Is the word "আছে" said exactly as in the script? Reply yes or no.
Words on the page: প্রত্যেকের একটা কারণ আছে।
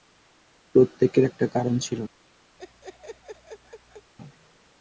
no